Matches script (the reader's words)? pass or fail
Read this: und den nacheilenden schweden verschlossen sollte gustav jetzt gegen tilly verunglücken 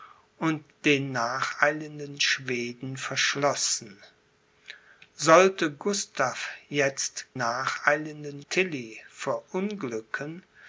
fail